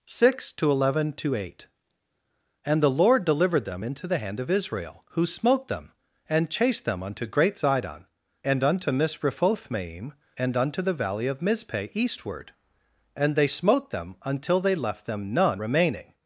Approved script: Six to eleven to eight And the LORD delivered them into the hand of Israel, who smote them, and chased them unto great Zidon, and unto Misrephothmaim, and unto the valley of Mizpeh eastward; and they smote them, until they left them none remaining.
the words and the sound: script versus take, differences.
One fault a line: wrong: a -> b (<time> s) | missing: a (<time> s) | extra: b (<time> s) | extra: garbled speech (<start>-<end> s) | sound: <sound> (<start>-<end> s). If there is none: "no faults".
no faults